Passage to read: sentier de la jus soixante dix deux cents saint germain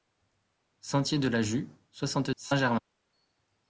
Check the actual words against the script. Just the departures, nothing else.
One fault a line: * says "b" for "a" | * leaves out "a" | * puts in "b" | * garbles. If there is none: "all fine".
* leaves out "dix deux cents"